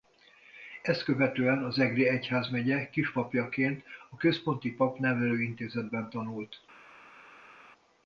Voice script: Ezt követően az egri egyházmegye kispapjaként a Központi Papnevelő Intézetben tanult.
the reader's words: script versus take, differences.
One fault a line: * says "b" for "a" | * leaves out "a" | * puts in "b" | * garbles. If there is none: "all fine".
all fine